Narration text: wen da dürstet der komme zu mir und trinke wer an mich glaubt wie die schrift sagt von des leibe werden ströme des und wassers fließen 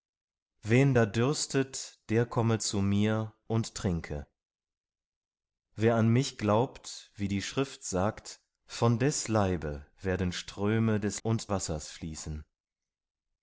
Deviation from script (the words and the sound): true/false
false